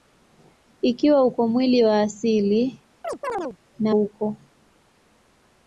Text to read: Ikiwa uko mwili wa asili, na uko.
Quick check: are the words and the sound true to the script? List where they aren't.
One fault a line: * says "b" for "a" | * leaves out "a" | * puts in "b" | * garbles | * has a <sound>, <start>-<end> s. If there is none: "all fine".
* has a chirp, 3.0-3.6 s